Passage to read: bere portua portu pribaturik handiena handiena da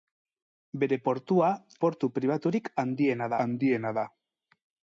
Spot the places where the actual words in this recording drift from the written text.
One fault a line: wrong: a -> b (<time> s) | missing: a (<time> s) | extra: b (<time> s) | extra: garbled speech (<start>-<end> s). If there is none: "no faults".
no faults